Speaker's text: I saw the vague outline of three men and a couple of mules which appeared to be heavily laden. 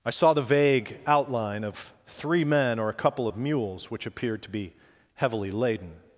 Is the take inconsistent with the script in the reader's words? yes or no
yes